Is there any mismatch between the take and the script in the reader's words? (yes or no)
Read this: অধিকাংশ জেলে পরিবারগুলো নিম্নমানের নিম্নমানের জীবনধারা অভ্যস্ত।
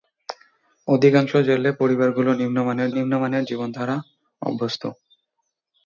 no